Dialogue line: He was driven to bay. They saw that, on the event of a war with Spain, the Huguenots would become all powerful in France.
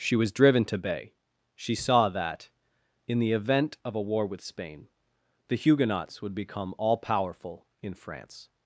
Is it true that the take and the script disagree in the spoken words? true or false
true